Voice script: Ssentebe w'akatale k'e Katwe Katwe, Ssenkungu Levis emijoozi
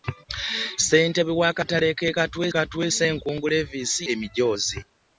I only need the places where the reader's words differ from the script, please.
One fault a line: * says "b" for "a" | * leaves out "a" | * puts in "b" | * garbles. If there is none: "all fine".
all fine